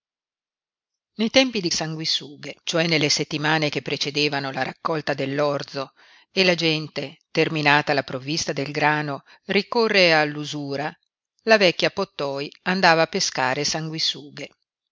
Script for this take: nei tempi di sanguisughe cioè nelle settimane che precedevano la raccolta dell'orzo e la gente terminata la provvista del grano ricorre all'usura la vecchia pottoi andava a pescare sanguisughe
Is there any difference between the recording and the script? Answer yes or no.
no